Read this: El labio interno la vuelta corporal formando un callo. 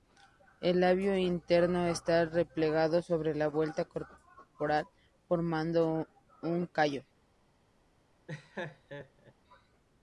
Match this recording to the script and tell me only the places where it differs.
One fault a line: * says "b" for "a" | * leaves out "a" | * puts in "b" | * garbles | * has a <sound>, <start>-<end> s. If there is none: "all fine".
* puts in "está replegado sobre"
* has a laugh, 8.3-9.3 s